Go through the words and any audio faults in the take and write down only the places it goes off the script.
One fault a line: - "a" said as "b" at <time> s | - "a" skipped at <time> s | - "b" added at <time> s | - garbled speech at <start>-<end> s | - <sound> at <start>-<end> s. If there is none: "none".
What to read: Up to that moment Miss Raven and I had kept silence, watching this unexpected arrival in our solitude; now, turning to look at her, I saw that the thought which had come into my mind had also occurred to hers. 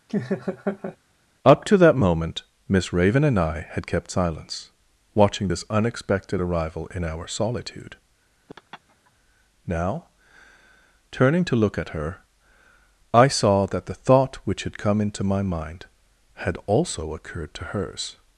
- laugh at 0.1-1.0 s
- laugh at 8.5-9.1 s